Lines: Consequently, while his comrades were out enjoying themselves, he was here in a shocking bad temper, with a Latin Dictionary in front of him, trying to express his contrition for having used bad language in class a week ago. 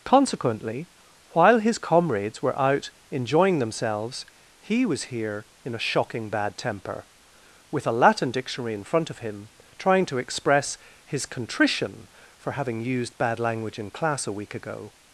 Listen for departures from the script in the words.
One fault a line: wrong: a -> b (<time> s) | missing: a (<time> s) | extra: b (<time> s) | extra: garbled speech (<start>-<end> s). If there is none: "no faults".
no faults